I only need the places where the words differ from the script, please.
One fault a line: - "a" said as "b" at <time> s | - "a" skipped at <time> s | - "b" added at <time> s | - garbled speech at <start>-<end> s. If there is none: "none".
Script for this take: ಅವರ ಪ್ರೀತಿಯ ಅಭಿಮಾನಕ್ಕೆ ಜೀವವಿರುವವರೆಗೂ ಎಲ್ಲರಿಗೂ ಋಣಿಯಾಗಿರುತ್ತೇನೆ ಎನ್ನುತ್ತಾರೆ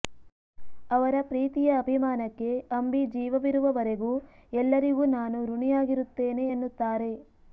- "ಅಂಬಿ" added at 2.7 s
- "ನಾನು" added at 5.2 s